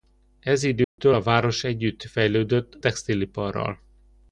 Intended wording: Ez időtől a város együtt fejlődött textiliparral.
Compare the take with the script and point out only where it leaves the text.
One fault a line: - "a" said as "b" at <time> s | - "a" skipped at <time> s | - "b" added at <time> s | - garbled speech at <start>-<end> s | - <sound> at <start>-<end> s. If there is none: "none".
- dropout at 0.8-1.0 s